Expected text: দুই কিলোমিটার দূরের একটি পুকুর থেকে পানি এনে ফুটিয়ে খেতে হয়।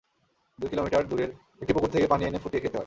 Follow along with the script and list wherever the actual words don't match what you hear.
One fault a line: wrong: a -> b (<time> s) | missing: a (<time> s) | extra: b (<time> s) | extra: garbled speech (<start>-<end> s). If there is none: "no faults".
no faults